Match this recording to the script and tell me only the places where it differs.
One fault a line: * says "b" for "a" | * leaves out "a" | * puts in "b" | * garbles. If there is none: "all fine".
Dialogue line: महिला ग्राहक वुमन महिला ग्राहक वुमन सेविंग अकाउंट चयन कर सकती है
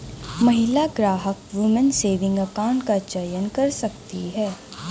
* leaves out "महिला ग्राहक वुमन"
* puts in "का"